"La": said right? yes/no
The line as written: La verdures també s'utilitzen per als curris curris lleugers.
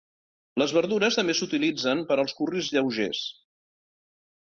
no